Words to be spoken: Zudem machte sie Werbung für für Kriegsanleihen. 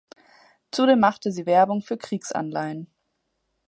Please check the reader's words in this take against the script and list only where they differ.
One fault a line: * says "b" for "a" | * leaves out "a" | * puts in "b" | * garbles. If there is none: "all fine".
* leaves out "für"